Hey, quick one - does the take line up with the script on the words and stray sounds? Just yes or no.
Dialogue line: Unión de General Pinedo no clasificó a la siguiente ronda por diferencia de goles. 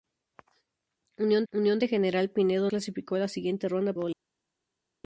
no